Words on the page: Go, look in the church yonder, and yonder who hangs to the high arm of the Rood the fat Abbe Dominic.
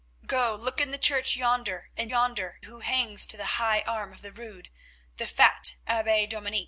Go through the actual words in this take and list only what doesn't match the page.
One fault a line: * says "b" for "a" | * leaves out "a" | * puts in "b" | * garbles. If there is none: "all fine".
all fine